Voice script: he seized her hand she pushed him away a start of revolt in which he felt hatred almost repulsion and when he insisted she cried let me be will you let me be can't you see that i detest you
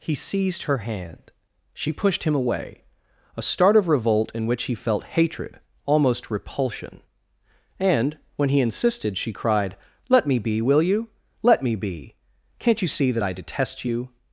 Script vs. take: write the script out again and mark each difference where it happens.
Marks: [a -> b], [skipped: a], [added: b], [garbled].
he seized her hand she pushed him away a start of revolt in which he felt hatred almost repulsion and when he insisted she cried let me be will you let me be can't you see that i detest you